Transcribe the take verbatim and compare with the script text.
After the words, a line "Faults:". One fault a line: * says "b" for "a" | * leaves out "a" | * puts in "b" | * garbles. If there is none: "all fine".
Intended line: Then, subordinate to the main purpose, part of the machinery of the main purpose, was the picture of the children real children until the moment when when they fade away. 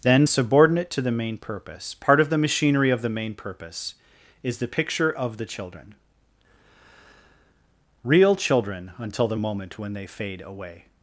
Then, subordinate to the main purpose, part of the machinery of the main purpose, is the picture of the children real children until the moment when they fade away.
Faults:
* says "is" for "was"
* leaves out "when"